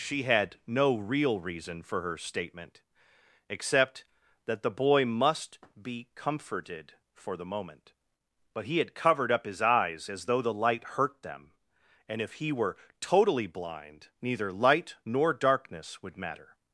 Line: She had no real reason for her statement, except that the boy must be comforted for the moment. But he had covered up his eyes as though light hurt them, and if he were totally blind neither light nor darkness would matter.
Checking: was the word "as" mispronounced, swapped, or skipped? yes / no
no